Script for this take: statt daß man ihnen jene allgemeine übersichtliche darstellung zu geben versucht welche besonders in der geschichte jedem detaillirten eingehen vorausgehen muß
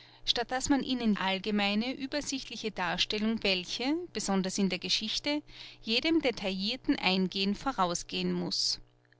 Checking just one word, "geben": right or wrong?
wrong